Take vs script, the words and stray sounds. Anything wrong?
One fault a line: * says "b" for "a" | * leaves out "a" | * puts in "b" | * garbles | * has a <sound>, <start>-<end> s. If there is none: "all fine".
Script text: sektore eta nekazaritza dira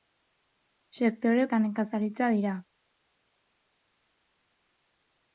all fine